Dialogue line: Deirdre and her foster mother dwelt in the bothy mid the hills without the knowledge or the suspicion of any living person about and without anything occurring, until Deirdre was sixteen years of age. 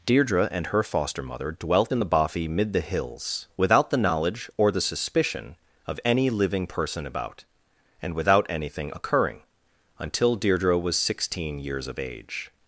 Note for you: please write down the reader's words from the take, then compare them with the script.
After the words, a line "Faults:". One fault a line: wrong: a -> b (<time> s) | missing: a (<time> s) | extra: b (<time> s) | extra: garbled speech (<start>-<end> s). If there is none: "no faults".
Deirdre and her foster mother dwelt in the bothy mid the hills without the knowledge or the suspicion of any living person about and without anything occurring, until Deirdre was sixteen years of age.
Faults:
no faults